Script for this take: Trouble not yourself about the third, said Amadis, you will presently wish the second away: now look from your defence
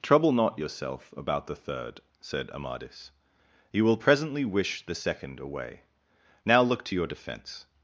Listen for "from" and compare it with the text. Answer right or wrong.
wrong